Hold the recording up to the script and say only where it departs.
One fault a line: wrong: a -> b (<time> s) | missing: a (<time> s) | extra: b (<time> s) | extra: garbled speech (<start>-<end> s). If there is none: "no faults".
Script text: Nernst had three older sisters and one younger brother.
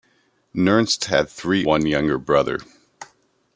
missing: older sisters and (1.7 s)